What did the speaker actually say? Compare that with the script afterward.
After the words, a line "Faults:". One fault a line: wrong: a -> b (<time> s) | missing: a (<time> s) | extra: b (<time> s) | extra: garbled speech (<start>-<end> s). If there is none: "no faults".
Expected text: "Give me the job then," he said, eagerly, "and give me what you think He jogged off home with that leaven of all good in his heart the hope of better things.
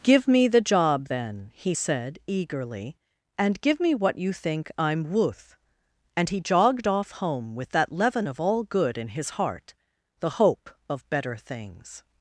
"Give me the job then," he said, eagerly, "and give me what you think I'm wuth;" and he jogged off home with that leaven of all good in his heart the hope of better things.
Faults:
extra: I'm wuth and (4.8 s)